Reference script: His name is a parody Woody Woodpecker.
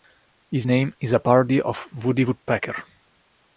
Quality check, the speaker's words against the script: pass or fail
fail